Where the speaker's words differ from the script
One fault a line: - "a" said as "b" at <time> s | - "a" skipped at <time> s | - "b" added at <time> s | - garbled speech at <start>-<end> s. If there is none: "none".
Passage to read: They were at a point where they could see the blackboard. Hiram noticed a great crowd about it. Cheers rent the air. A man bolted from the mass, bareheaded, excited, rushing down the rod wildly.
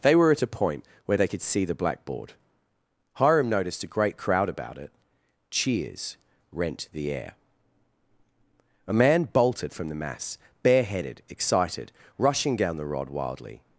none